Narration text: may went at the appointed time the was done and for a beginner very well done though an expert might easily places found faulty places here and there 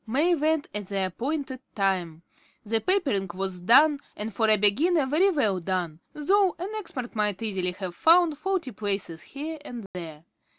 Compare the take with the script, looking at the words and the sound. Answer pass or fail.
fail